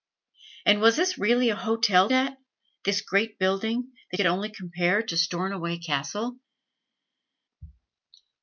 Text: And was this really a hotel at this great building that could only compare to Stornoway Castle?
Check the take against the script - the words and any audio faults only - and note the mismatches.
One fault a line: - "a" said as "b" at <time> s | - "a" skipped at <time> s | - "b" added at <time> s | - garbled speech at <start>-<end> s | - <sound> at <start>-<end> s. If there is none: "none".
none